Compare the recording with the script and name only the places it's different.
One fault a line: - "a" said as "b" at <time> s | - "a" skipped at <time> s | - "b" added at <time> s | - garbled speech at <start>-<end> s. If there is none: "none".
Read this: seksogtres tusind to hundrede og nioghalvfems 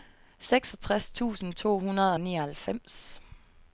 none